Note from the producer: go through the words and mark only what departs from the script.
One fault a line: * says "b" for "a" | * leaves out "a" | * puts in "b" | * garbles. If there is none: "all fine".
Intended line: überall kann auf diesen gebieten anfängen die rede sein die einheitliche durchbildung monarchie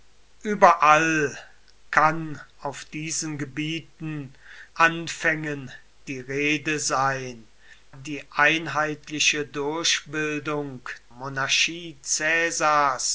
all fine